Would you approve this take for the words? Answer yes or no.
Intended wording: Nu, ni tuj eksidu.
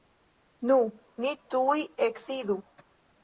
yes